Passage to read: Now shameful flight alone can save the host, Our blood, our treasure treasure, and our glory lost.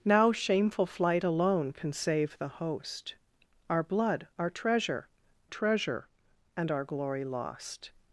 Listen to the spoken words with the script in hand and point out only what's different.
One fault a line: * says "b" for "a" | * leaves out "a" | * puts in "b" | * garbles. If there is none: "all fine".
all fine